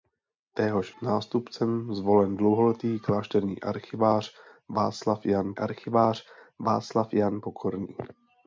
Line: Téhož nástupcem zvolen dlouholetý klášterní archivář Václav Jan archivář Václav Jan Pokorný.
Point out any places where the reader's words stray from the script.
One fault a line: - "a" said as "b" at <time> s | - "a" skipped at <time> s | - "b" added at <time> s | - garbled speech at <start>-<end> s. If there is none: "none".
none